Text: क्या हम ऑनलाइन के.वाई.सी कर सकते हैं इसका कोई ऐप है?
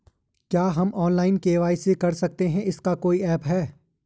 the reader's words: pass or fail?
pass